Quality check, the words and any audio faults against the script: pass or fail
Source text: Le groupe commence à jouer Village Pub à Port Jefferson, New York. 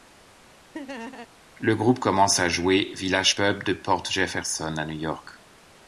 fail